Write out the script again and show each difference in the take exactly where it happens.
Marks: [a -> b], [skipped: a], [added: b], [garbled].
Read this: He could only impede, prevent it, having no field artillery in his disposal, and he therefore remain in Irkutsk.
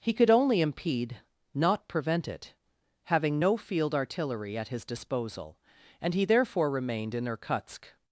He could only impede, [added: not] prevent it, having no field artillery [in -> at] his disposal, and he therefore [remain -> remained] in Irkutsk.